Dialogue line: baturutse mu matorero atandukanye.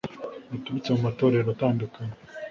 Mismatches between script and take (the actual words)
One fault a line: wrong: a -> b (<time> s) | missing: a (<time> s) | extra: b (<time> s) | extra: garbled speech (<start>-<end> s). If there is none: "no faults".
no faults